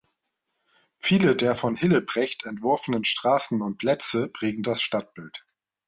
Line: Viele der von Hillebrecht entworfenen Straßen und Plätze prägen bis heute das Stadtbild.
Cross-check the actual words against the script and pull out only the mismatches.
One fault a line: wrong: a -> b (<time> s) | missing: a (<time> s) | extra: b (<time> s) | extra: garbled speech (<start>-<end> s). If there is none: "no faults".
missing: bis heute (4.6 s)